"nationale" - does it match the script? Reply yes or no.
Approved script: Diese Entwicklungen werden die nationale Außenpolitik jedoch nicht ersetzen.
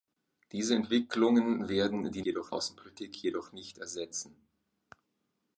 no